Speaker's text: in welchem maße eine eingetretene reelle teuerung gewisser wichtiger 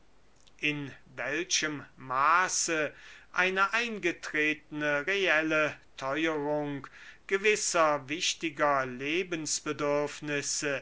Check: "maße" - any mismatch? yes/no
no